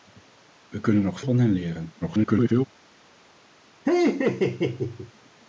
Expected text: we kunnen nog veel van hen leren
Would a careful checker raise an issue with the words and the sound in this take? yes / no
yes